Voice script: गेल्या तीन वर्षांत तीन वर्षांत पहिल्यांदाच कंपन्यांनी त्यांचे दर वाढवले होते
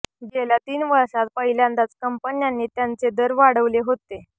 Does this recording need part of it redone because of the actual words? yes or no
yes